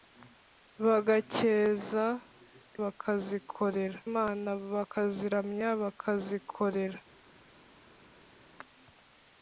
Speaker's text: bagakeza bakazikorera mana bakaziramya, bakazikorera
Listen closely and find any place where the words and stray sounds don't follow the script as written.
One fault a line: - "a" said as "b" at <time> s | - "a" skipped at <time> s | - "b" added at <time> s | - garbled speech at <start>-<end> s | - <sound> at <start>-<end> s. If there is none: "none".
none